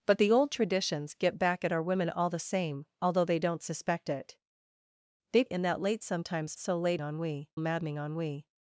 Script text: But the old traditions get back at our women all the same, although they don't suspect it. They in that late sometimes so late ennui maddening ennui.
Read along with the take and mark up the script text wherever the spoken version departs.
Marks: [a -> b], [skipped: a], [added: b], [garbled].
But the old traditions get back at our women all the same, although they don't suspect it. They in that late sometimes so late ennui maddening ennui.